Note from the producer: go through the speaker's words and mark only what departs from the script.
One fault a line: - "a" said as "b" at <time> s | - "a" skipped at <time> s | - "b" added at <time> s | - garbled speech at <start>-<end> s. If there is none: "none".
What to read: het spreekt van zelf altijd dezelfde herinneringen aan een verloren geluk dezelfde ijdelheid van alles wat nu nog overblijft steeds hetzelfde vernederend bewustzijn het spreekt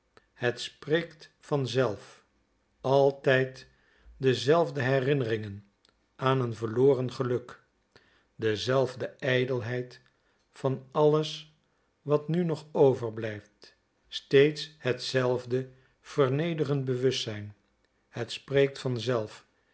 none